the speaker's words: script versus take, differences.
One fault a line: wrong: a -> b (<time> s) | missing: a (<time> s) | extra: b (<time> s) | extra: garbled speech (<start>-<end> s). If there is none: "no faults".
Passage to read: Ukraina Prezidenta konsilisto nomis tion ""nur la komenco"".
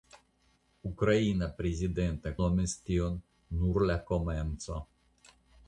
missing: konsilisto (2.3 s)